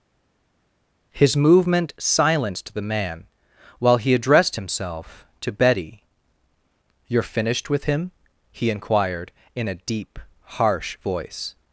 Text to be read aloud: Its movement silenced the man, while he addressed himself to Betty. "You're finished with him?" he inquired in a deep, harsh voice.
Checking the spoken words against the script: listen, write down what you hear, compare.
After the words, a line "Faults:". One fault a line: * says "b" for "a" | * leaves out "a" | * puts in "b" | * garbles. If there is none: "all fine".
His movement silenced the man, while he addressed himself to Betty. "You're finished with him?" he inquired in a deep, harsh voice.
Faults:
* says "His" for "Its"